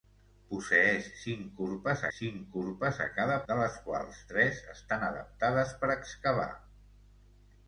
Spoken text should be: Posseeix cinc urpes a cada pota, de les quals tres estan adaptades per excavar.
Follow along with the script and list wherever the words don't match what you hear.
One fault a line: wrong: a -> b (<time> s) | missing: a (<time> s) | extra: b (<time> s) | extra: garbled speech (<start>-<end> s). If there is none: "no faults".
extra: cinc urpes (2.2 s)
missing: pota (3.4 s)